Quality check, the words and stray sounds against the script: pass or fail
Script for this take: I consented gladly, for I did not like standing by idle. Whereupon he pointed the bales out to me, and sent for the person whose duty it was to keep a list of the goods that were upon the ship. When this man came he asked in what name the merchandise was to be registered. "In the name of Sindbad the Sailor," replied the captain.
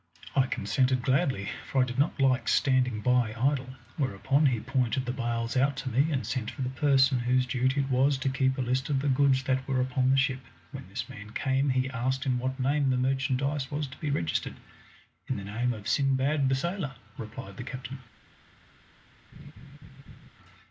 fail